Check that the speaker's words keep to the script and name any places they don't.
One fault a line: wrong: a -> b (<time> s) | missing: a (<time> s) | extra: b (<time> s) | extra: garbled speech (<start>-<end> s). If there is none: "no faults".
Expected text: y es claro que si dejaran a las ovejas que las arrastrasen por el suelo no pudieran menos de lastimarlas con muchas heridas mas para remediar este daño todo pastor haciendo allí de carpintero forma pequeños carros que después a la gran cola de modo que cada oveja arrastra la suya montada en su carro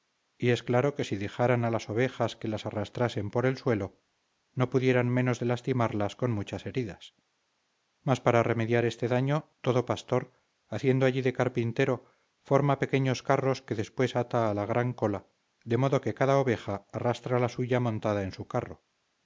extra: ata (14.1 s)